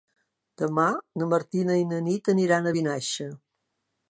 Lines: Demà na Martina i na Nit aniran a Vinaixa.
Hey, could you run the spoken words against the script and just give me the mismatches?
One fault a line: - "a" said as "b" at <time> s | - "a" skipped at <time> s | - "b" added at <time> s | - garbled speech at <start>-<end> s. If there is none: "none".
none